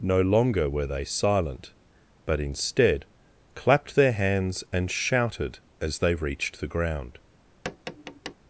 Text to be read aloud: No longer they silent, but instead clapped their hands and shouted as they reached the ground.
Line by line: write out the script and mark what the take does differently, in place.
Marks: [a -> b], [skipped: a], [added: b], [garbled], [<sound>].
No longer [added: were] they silent, but instead clapped their hands and shouted as they reached the ground. [tap]